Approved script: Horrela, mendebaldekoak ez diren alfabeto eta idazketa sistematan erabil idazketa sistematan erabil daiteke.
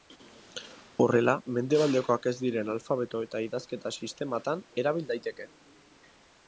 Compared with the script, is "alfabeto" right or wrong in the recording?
right